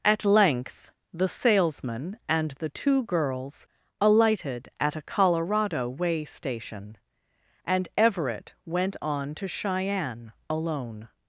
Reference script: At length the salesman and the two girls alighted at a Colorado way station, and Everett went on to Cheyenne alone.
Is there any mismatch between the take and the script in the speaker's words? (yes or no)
no